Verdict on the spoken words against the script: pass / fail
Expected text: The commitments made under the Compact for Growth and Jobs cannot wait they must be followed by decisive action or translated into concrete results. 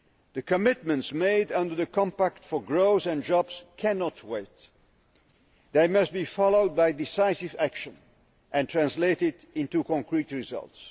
fail